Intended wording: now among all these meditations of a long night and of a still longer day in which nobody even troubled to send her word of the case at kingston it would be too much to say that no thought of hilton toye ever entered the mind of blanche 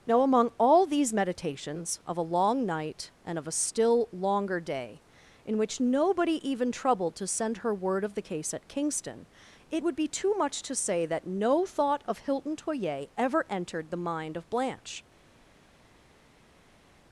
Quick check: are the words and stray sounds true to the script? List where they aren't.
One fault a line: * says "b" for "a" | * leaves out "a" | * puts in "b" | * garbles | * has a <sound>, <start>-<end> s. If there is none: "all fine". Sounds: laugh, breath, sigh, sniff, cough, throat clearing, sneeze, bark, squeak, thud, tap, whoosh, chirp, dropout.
all fine